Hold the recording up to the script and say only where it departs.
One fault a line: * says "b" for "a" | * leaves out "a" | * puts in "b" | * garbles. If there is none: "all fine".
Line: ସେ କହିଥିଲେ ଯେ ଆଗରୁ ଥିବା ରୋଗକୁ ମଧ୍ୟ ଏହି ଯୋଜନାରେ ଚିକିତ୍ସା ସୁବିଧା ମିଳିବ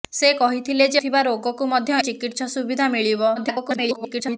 * leaves out "ଆଗରୁ"
* leaves out "ଏହି ଯୋଜନାରେ"
* garbles